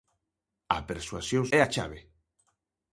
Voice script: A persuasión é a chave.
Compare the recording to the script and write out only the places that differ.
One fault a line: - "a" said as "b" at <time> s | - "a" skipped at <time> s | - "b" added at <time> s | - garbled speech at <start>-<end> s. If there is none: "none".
none